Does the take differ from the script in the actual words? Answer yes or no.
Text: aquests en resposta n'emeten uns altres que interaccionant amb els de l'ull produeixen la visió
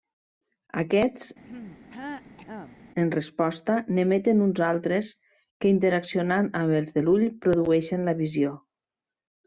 no